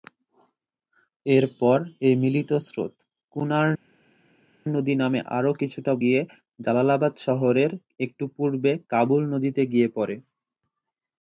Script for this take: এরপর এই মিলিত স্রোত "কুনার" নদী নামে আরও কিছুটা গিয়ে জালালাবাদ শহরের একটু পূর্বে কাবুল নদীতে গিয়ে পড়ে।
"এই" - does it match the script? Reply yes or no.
yes